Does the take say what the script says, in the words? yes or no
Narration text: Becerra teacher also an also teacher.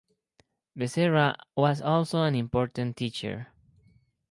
no